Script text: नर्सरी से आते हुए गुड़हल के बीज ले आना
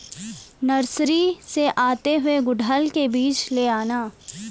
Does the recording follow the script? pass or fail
pass